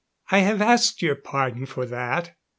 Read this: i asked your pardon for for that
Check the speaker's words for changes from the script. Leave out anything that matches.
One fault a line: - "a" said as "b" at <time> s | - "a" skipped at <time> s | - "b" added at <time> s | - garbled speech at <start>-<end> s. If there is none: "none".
- "have" added at 0.4 s
- "for" skipped at 1.9 s